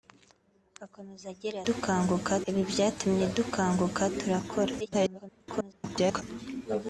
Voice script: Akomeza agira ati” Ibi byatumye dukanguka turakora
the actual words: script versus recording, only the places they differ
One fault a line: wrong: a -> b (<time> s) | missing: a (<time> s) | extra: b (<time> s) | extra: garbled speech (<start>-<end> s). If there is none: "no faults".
wrong: ati -> dukanguka (1.7 s)
extra: garbled speech (4.8-6.2 s)